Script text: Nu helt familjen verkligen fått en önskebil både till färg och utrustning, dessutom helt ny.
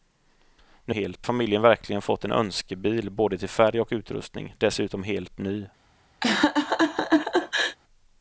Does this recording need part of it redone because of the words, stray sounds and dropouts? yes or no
yes